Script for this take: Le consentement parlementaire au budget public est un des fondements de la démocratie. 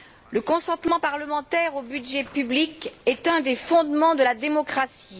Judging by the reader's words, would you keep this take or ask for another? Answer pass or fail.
pass